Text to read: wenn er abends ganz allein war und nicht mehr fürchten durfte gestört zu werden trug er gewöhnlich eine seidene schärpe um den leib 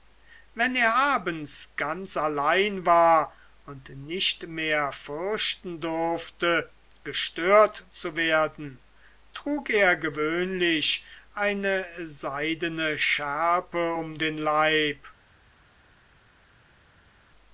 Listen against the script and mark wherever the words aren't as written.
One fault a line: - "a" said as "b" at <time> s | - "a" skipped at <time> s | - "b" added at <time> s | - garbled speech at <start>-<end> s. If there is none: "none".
none